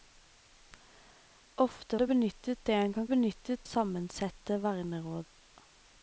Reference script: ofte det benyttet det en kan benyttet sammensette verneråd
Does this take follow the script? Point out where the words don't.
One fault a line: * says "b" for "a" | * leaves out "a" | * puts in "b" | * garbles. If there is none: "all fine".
all fine